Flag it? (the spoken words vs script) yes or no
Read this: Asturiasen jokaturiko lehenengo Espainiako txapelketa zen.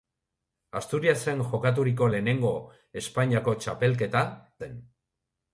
no